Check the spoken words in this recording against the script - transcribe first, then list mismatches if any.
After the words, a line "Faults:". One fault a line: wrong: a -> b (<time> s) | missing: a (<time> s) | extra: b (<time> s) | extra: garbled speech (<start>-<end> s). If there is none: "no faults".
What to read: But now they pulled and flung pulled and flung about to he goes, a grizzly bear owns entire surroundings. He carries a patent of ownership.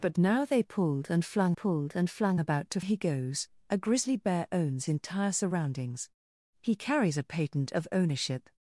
But now they pulled and flung pulled and flung about to he goes, a grizzly bear owns entire surroundings. He carries a patent of ownership.
Faults:
no faults